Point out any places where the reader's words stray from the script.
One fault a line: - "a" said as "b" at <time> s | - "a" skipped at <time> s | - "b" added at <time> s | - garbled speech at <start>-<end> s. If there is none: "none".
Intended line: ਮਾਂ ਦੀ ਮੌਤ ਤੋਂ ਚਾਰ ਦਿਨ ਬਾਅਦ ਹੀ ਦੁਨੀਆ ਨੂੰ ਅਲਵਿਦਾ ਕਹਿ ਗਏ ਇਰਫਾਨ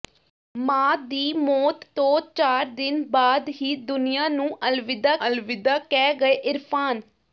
- "ਅਲਵਿਦਾ" added at 5.3 s